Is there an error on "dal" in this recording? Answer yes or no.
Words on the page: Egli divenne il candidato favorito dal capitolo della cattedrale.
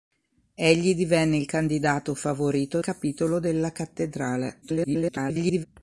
yes